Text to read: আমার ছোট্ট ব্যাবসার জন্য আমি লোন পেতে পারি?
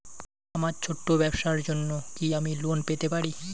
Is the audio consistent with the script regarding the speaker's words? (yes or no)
no